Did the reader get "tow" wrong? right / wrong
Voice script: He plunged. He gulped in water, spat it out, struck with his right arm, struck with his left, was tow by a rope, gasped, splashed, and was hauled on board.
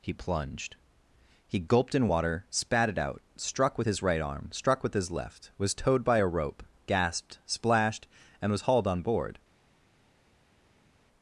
wrong